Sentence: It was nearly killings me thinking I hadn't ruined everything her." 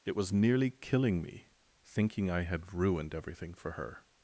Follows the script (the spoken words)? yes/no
no